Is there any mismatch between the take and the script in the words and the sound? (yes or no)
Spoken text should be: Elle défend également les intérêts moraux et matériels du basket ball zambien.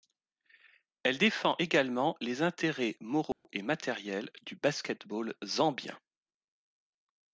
yes